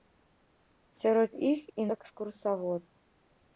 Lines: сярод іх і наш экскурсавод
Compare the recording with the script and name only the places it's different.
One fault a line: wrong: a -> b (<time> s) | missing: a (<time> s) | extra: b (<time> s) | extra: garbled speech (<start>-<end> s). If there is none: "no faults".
missing: наш (1.9 s)